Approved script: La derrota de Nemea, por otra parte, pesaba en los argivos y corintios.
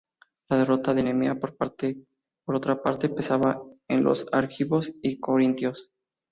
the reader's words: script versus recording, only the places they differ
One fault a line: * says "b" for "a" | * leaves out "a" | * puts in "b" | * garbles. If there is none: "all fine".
all fine